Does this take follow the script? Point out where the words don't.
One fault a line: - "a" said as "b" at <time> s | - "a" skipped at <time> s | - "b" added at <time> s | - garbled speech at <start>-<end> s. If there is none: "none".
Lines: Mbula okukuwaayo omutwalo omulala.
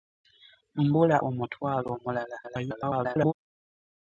- "okukuwaayo" skipped at 1.2 s
- garbled speech at 2.4-3.3 s